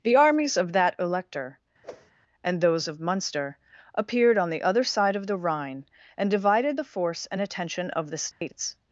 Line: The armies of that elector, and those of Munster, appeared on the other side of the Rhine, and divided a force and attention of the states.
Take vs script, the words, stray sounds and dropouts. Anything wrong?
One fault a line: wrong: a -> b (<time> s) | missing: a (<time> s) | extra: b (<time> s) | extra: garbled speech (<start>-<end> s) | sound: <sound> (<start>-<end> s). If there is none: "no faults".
sound: whoosh (1.8-2.1 s)
wrong: a -> the (6.7 s)
sound: dropout (8.3-8.4 s)